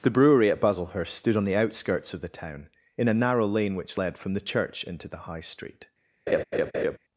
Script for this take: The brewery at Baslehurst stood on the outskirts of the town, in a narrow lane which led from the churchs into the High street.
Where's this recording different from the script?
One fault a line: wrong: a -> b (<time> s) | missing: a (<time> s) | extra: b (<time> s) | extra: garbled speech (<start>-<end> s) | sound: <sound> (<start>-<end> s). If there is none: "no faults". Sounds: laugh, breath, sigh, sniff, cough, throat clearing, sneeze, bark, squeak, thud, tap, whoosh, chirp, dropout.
wrong: churchs -> church (4.4 s)
sound: laugh (6.3-7.0 s)